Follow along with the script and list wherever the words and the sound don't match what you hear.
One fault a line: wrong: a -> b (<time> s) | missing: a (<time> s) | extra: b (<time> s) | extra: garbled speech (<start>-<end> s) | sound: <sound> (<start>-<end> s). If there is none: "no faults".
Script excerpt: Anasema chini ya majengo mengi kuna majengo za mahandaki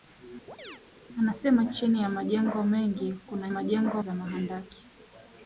sound: chirp (0.5-0.8 s)